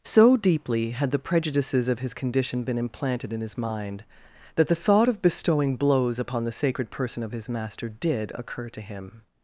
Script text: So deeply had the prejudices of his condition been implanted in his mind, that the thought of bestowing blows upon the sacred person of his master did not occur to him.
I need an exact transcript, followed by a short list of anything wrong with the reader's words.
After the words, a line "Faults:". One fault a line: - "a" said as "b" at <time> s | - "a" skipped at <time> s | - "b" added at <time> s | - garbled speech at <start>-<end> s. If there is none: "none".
So deeply had the prejudices of his condition been implanted in his mind, that the thought of bestowing blows upon the sacred person of his master did occur to him.
Faults:
- "not" skipped at 8.3 s